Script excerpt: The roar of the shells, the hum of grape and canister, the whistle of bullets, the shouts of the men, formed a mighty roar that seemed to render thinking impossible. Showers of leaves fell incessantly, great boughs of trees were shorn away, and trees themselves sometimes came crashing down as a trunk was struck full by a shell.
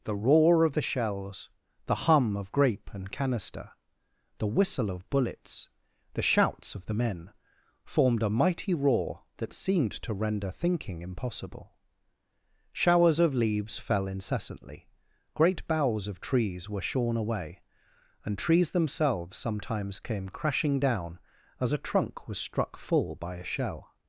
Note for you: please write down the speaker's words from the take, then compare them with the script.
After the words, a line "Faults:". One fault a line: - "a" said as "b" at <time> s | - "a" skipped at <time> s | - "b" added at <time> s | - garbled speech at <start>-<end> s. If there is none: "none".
The roar of the shells, the hum of grape and canister, the whistle of bullets, the shouts of the men, formed a mighty roar that seemed to render thinking impossible. Showers of leaves fell incessantly, great boughs of trees were shorn away, and trees themselves sometimes came crashing down as a trunk was struck full by a shell.
Faults:
none